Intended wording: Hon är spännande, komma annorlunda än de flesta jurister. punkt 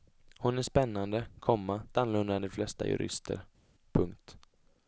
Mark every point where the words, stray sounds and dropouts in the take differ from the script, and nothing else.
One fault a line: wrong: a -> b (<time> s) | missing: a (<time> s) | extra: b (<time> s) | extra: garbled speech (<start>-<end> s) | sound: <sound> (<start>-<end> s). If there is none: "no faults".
no faults